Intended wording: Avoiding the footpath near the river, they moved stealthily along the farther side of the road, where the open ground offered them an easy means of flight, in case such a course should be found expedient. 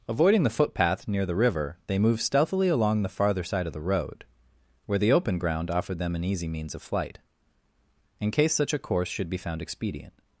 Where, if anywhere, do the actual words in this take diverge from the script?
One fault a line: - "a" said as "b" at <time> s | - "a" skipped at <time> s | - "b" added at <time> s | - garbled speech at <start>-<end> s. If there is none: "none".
none